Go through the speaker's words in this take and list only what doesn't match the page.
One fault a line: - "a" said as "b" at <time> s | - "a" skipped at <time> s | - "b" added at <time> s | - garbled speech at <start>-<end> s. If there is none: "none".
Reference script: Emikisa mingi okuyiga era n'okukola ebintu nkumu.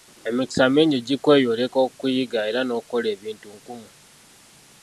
- "gikweyoleka" added at 1.1 s